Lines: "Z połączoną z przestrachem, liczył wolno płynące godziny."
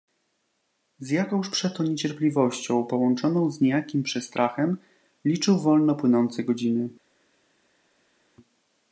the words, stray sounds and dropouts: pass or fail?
fail